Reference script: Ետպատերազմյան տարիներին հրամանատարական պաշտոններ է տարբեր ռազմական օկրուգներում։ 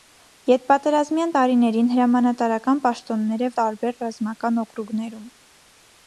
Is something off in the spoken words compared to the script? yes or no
no